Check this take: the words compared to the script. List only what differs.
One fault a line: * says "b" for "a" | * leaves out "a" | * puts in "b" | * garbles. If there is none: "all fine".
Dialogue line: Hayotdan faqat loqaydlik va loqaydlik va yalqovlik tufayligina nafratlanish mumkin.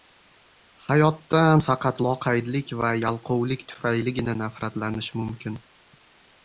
* leaves out "loqaydlik va"